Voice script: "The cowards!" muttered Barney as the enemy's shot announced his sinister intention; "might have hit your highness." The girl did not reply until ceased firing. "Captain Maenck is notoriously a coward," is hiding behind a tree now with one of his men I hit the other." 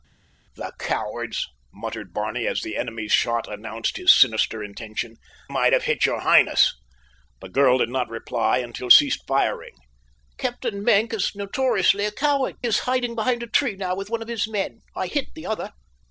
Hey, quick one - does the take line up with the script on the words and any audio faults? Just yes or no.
yes